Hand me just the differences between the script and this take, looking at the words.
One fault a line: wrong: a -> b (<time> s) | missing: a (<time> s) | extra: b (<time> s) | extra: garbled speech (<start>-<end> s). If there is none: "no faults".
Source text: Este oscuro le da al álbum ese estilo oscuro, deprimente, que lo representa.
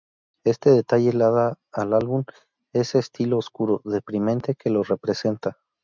wrong: oscuro -> detalle (0.7 s)